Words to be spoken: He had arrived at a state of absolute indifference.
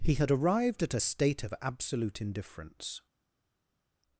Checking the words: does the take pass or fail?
pass